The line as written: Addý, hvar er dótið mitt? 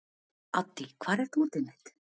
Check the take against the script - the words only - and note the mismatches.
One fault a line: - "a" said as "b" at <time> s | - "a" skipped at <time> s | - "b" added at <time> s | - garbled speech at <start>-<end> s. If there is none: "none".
none